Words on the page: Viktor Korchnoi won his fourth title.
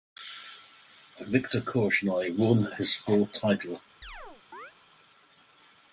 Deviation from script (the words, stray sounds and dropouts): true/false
true